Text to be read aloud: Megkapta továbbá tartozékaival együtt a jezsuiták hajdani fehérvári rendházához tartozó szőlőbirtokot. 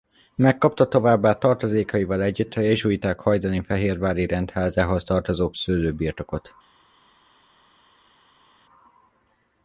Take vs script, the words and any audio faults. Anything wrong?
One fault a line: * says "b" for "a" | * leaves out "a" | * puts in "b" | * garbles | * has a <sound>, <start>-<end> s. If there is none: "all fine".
all fine